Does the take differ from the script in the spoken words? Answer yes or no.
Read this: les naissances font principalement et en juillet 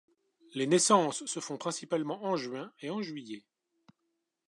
yes